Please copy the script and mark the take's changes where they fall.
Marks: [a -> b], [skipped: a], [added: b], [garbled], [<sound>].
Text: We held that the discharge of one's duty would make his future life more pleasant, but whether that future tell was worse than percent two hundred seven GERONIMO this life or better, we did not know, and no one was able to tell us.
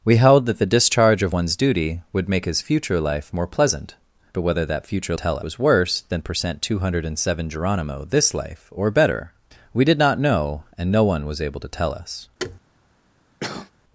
We held that the discharge of one's duty would make his future life more pleasant, but whether that future tell was worse than percent two hundred seven GERONIMO this life or better, we did not know, and no one was able to tell us. [thud] [cough]